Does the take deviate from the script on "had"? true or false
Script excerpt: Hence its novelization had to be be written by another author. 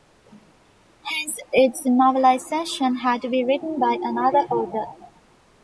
false